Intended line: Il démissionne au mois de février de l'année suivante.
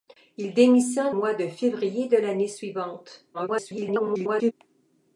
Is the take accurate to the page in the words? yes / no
no